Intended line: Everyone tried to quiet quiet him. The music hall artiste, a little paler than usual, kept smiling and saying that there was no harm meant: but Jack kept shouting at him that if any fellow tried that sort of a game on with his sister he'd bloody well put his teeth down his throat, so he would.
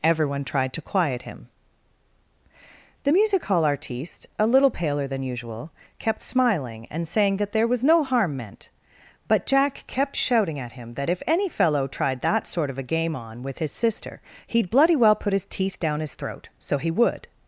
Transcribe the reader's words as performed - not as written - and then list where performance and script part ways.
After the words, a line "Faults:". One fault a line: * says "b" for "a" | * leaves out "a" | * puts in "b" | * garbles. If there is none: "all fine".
Everyone tried to quiet him. The music hall artiste, a little paler than usual, kept smiling and saying that there was no harm meant: but Jack kept shouting at him that if any fellow tried that sort of a game on with his sister he'd bloody well put his teeth down his throat, so he would.
Faults:
* leaves out "quiet"